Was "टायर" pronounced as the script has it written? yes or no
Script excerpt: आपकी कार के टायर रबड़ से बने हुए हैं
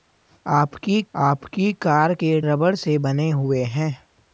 no